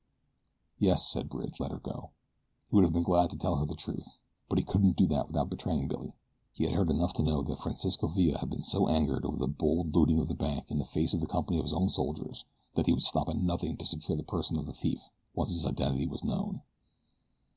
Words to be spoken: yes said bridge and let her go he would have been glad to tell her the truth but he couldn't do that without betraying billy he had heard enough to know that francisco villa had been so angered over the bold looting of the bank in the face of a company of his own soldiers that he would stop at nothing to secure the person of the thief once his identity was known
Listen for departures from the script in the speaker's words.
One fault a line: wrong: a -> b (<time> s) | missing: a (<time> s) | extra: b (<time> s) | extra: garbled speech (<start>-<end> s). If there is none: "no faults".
missing: and (1.6 s)